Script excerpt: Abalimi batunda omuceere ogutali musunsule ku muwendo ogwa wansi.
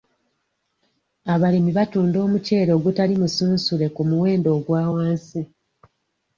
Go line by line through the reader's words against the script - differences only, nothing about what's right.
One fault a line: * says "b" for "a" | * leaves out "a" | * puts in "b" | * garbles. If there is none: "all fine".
all fine